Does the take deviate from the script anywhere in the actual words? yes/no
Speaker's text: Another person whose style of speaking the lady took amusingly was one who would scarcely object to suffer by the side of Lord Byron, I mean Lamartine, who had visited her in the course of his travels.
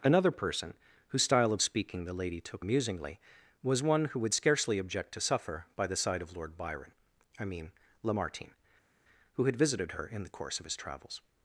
no